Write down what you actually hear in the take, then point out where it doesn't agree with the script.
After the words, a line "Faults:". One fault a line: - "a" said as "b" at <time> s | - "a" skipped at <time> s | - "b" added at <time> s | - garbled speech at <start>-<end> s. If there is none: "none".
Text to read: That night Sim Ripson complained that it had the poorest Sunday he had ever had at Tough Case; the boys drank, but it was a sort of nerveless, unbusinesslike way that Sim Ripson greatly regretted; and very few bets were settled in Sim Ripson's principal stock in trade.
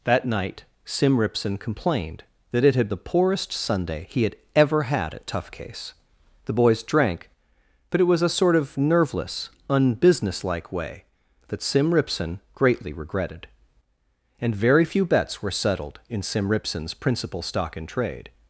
That night Sim Ripson complained that it had the poorest Sunday he had ever had at Tough Case; the boys drank, but it was a sort of nerveless, unbusinesslike way that Sim Ripson greatly regretted; and very few bets were settled in Sim Ripson's principal stock in trade.
Faults:
none